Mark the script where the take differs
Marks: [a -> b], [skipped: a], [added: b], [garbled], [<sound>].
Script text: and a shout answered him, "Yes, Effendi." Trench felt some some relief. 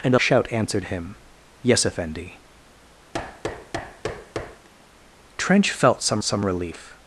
and a shout answered him, "Yes, Effendi." [thud] Trench felt some some relief.